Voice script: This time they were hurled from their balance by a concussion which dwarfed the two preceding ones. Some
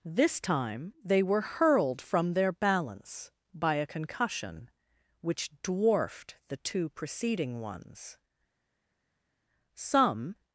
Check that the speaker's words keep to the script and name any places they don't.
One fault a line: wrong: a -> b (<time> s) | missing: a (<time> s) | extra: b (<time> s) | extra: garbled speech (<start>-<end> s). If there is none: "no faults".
no faults